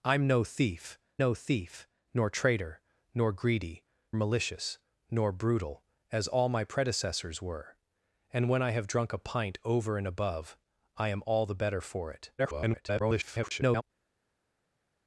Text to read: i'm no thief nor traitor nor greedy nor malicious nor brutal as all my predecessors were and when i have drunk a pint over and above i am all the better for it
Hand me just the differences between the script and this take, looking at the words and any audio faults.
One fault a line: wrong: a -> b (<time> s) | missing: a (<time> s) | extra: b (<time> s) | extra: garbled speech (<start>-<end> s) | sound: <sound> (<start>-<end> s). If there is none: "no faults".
extra: no thief (1.2 s)
missing: nor (3.8 s)
extra: garbled speech (12.4-13.8 s)